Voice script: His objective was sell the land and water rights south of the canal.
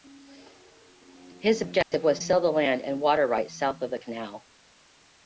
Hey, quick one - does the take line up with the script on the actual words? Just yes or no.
yes